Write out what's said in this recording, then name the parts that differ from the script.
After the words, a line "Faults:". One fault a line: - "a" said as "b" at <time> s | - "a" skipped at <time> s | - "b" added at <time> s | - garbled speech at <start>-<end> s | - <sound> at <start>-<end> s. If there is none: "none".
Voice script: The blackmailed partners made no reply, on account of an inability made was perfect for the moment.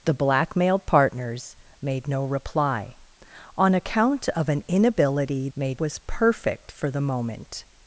The blackmailed partners made no reply, on account of an inability made was perfect for the moment.
Faults:
none